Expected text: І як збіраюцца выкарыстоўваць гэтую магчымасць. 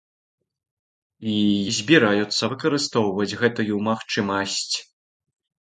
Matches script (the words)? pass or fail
fail